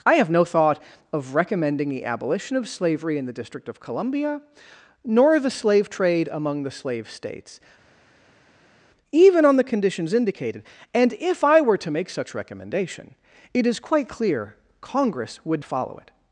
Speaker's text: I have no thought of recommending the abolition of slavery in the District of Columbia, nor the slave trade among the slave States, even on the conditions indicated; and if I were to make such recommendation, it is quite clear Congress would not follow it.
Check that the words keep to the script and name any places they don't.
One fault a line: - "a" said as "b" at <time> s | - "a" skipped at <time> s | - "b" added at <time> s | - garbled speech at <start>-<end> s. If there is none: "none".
- "not" skipped at 15.6 s